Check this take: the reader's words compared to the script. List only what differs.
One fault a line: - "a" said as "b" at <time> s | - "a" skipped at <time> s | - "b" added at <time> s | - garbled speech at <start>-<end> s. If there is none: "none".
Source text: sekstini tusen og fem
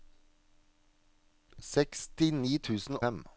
none